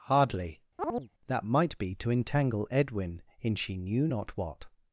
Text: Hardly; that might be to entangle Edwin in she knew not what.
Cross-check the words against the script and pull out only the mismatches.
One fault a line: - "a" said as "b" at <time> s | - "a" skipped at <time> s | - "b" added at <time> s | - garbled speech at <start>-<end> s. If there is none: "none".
none